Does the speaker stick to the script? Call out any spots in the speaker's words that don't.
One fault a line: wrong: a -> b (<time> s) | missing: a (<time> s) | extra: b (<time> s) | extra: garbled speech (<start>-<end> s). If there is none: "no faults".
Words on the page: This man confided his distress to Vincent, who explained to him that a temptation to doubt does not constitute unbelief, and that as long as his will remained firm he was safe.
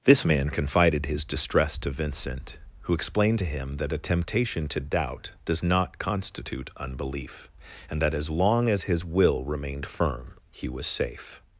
no faults